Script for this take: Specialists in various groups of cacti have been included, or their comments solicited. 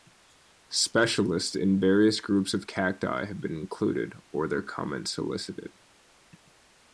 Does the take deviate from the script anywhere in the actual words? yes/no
no